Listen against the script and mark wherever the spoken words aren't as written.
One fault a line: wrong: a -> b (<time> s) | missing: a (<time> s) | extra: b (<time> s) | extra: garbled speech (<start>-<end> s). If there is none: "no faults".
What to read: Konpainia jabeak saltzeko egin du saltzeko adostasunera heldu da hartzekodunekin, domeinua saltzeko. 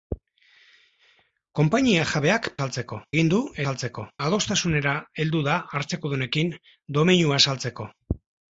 no faults